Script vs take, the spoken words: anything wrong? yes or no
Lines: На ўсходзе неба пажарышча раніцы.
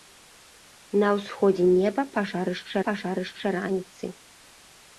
yes